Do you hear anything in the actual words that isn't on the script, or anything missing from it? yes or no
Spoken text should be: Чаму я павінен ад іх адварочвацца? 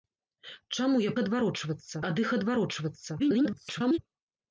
yes